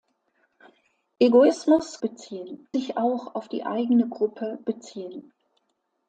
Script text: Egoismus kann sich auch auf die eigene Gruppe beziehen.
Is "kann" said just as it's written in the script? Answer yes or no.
no